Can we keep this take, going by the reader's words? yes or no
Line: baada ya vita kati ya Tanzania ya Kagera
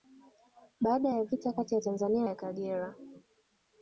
yes